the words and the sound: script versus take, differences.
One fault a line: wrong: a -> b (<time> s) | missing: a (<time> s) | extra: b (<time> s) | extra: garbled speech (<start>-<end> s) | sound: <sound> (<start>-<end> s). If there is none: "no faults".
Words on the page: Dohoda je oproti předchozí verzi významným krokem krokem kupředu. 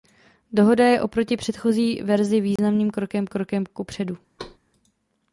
sound: dropout (2.6-2.6 s)
sound: thud (4.4-4.6 s)